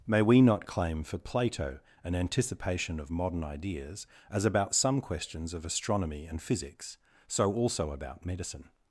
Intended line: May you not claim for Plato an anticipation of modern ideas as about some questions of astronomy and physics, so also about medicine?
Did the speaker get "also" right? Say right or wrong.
right